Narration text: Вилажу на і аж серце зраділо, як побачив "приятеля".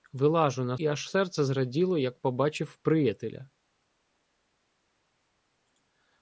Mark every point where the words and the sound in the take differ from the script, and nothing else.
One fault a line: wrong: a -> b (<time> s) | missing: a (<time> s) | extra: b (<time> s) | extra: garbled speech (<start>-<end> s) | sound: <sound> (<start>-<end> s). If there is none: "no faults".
no faults